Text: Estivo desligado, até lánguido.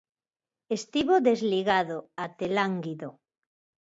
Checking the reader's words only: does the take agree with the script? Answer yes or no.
yes